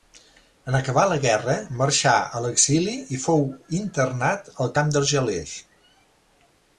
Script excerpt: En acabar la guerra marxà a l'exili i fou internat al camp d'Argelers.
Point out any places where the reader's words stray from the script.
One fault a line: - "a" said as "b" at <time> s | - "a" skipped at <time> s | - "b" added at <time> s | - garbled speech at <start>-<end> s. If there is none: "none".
none